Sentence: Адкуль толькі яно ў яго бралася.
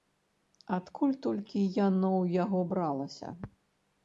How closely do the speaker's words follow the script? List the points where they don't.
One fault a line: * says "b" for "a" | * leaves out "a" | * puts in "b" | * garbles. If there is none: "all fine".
all fine